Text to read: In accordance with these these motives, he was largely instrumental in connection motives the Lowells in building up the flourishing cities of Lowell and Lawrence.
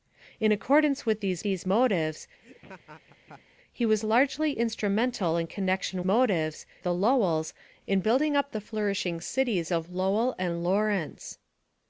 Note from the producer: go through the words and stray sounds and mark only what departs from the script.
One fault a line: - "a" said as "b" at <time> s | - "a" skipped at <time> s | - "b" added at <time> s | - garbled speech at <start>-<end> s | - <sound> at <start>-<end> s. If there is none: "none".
- laugh at 2.4-3.4 s